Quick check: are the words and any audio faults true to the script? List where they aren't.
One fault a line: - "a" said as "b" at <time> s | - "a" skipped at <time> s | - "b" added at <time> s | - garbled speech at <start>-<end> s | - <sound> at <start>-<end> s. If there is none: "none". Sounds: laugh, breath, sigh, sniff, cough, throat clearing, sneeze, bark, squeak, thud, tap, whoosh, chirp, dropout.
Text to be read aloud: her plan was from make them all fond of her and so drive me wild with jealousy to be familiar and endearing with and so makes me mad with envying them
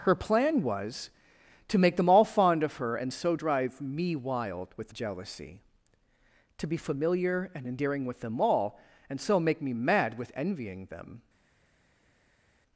- "from" said as "to" at 1.7 s
- "them all" added at 8.2 s
- "makes" said as "make" at 9.4 s